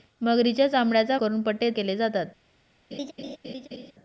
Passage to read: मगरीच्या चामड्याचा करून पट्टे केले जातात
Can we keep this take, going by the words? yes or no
yes